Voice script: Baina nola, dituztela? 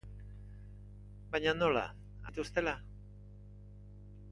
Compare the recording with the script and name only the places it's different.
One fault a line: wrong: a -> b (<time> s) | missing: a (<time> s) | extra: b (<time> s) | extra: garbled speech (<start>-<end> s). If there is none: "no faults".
no faults